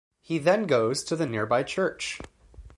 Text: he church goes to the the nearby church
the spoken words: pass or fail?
fail